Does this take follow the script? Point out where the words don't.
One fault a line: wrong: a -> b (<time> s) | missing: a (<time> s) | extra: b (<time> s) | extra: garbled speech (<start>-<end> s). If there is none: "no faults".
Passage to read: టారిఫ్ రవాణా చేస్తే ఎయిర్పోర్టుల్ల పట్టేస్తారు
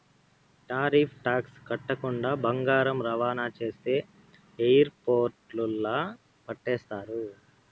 extra: టాక్స్ కట్టకుండా బంగారం (1.2 s)